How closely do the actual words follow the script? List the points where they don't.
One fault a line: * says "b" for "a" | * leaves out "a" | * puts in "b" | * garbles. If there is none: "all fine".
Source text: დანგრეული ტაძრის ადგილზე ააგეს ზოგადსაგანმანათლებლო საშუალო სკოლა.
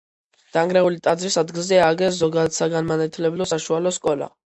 all fine